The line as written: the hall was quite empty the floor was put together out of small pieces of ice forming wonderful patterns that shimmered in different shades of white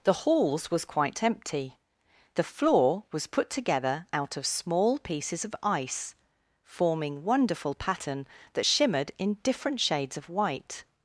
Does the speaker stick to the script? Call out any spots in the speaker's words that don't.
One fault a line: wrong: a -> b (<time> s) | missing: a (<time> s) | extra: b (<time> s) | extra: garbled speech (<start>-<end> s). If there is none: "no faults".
wrong: hall -> halls (0.1 s)
wrong: patterns -> pattern (7.7 s)